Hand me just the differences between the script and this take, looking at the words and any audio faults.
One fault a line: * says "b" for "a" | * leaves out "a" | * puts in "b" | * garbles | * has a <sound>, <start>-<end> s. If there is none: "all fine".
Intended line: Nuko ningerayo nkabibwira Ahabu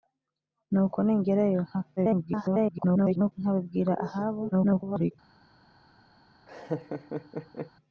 * garbles
* garbles
* has a laugh, 6.5-7.7 s